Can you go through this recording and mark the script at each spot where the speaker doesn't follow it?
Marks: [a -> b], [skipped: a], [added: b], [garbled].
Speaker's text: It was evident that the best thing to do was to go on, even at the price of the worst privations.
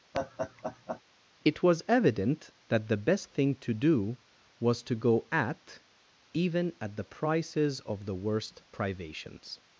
It was evident that the best thing to do was to go [on, -> at] even at the [price -> prices] of the worst privations.